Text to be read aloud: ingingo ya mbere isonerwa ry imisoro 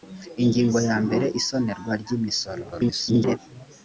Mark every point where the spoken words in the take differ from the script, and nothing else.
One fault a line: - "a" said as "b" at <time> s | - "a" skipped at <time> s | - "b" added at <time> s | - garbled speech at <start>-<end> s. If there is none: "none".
- garbled speech at 2.7-3.4 s